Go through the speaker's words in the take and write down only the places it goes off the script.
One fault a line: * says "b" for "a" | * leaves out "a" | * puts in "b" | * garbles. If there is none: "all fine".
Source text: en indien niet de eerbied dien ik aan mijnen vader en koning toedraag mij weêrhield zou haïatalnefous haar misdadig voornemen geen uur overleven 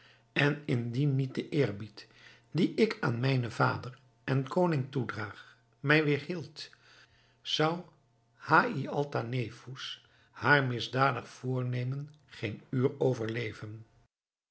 all fine